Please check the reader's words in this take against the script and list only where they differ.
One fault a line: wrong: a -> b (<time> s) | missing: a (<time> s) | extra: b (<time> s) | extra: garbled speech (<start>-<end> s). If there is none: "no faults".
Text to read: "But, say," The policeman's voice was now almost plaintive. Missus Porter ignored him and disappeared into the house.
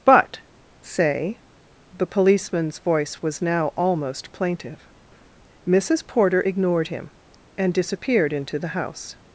no faults